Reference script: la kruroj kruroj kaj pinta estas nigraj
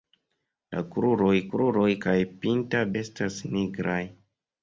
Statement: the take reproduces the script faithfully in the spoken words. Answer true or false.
true